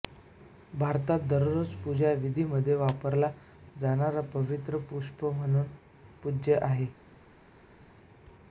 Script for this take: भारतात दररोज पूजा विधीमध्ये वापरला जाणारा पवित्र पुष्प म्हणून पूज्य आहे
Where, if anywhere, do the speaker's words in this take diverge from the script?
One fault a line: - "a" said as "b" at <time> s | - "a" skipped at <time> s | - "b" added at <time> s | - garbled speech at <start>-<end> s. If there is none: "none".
none